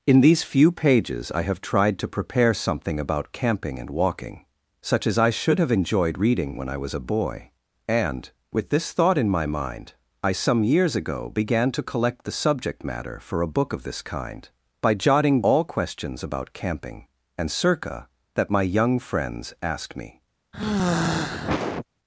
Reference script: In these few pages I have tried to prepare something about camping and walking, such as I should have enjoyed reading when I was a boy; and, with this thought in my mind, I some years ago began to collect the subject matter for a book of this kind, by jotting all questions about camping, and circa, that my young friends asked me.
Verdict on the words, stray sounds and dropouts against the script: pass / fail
fail